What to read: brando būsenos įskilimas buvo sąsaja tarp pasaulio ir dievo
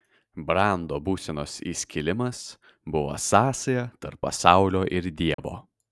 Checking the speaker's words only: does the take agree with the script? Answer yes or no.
yes